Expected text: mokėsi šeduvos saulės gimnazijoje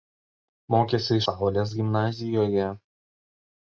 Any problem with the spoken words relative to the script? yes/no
yes